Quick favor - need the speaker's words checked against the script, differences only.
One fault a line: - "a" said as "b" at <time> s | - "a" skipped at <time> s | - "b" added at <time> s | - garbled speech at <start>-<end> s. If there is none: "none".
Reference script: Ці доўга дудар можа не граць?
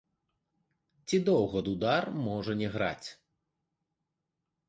none